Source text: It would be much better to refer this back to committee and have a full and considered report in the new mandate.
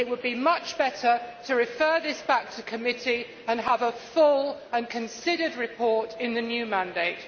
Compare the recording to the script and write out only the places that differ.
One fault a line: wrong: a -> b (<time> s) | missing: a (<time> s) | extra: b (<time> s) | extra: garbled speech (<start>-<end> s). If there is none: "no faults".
no faults